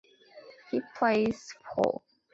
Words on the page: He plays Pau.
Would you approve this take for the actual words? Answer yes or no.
yes